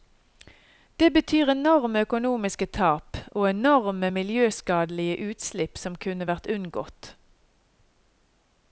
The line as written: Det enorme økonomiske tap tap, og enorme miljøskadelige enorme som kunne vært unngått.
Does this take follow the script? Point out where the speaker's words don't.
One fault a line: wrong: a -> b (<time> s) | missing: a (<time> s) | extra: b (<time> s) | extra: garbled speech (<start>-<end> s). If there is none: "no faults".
extra: betyr (1.1 s)
missing: tap (3.2 s)
wrong: enorme -> utslipp (5.3 s)